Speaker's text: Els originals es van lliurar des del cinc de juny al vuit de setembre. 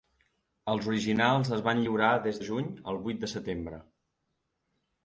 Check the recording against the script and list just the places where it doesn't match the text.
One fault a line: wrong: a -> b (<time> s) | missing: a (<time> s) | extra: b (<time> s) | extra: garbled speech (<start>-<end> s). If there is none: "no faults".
missing: del cinc (2.4 s)